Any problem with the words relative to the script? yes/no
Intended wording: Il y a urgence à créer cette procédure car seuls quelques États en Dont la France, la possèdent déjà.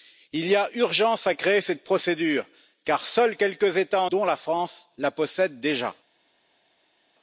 no